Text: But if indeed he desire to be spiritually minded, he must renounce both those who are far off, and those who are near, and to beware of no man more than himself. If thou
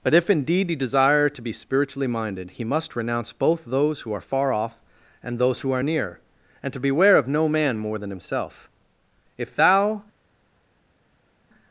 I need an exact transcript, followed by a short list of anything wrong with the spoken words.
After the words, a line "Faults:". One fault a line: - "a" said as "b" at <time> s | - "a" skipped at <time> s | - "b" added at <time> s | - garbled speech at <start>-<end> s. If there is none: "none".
But if indeed he desire to be spiritually minded, he must renounce both those who are far off, and those who are near, and to beware of no man more than himself. If thou
Faults:
none